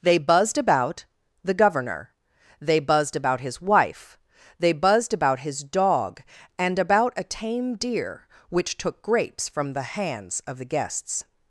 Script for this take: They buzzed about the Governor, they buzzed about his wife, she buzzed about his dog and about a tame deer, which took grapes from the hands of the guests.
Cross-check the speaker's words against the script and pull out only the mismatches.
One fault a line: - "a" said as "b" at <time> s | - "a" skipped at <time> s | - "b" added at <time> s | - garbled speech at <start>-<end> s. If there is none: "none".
- "she" said as "they" at 4.6 s